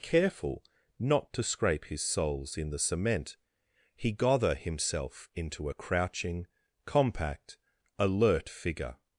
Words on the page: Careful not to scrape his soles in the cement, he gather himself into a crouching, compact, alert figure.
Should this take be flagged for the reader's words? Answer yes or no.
no